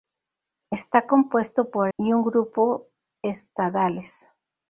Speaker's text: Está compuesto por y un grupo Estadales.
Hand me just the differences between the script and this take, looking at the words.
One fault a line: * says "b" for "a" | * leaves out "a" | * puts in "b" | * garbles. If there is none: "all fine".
all fine